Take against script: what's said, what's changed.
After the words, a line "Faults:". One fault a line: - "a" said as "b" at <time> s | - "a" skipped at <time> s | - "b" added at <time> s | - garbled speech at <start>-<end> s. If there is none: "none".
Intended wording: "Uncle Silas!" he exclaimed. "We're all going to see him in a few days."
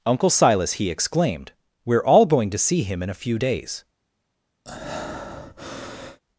"Uncle Silas!" he exclaimed. "We're all going to see him in a few days."
Faults:
none